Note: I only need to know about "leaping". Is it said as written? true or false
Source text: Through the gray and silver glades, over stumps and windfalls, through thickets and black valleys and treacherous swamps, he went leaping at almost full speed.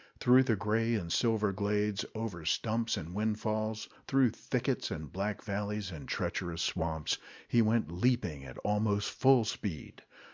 true